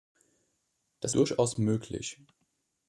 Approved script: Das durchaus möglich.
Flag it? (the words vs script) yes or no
no